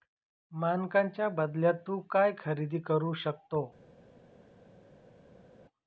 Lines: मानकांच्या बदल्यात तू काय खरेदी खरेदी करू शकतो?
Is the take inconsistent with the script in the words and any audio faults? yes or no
yes